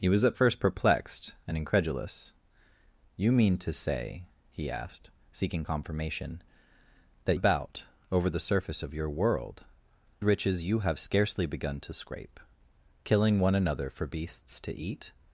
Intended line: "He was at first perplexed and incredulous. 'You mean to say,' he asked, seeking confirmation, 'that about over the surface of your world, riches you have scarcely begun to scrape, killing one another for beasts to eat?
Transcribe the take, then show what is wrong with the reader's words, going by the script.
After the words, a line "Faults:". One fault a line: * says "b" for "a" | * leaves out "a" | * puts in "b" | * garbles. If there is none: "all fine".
"He was at first perplexed and incredulous. 'You mean to say,' he asked, seeking confirmation, 'that about over the surface of your world, riches you have scarcely begun to scrape, killing one another for beasts to eat?
Faults:
all fine